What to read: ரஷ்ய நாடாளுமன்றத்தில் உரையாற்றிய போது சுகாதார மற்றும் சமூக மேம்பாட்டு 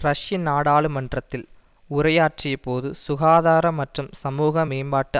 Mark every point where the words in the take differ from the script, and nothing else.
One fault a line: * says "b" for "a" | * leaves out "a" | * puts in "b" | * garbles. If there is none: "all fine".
all fine